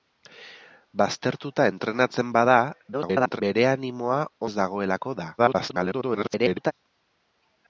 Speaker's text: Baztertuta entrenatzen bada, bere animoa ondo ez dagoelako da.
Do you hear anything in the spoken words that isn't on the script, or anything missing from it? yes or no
yes